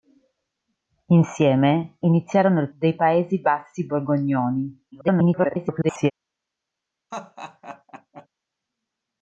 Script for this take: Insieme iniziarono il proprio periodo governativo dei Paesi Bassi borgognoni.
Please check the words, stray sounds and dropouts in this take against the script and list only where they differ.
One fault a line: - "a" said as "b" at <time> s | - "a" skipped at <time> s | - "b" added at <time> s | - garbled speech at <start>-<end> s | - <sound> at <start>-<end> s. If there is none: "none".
- "proprio periodo governativo" skipped at 2.7 s
- garbled speech at 4.9-6.1 s
- laugh at 7.1-8.3 s